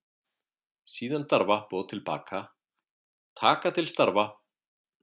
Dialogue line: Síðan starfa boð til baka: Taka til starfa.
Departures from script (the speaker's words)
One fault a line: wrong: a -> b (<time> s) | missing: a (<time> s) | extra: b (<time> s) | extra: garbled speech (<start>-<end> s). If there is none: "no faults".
no faults